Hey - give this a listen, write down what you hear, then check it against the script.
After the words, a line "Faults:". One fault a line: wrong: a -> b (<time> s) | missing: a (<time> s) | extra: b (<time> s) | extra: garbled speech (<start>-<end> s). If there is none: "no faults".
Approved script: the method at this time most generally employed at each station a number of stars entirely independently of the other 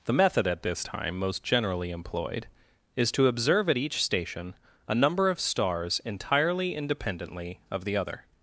the method at this time most generally employed is to observe at each station a number of stars entirely independently of the other
Faults:
extra: is to observe (2.9 s)